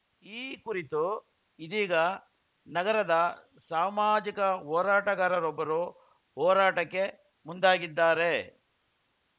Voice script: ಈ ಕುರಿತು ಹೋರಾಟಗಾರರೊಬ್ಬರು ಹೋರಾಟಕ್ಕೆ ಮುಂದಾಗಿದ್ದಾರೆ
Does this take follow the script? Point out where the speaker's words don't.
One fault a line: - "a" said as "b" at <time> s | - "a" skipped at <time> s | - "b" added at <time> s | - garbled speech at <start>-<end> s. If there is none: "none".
- "ಇದೀಗ ನಗರದ ಸಾಮಾಜಿಕ" added at 1.6 s